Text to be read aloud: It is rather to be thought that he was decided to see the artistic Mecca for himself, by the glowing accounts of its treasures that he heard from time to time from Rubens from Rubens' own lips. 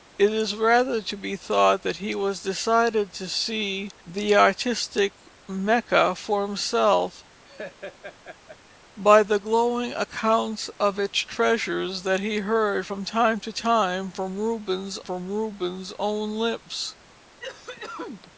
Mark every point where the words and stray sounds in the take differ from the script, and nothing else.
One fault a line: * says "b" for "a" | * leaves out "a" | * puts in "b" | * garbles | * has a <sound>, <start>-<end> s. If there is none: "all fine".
* has a laugh, 7.4-8.8 s
* has a cough, 17.4-18.3 s